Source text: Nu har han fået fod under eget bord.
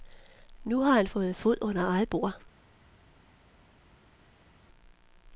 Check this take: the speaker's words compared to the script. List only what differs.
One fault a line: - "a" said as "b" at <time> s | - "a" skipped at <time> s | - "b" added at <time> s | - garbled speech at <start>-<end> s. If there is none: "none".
none